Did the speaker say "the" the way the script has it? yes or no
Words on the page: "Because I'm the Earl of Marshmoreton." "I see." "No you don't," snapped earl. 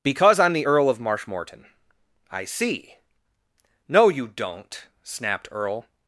yes